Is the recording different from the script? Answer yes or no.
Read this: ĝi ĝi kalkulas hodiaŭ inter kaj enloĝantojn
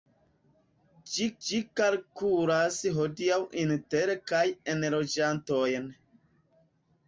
no